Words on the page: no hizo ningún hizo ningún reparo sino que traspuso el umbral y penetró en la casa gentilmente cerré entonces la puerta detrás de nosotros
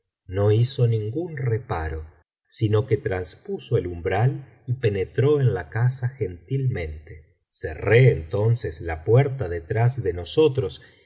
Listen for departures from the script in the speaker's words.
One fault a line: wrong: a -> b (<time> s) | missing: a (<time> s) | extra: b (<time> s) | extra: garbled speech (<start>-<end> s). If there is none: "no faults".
missing: hizo ningún (1.4 s)